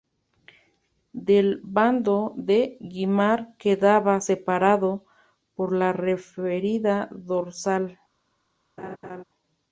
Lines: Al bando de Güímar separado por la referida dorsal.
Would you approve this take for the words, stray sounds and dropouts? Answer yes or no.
no